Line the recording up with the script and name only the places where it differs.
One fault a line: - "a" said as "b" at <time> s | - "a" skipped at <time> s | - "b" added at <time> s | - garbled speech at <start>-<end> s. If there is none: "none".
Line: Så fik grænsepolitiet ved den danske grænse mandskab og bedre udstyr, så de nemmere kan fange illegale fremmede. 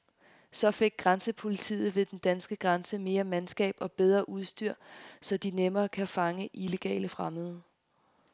- "mere" added at 3.0 s